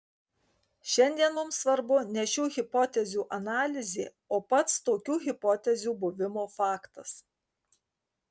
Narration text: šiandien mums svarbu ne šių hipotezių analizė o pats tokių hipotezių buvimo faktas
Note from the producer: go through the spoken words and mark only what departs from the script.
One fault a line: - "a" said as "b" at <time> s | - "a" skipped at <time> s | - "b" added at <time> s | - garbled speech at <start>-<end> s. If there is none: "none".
none